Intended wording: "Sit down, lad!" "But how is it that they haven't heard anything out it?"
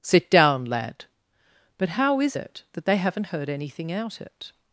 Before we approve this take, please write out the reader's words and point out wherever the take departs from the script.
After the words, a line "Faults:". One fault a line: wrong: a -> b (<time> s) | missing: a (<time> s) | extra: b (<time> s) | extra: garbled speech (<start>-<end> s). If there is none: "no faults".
"Sit down, lad!" "But how is it that they haven't heard anything out it?"
Faults:
no faults